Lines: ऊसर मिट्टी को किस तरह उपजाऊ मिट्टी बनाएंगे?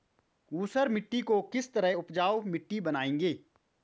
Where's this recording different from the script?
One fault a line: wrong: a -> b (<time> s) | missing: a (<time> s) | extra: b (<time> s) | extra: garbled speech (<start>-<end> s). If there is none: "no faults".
no faults